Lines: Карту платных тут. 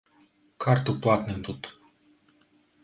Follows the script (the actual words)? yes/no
yes